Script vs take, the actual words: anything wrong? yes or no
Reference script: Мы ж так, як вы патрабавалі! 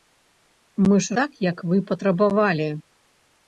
no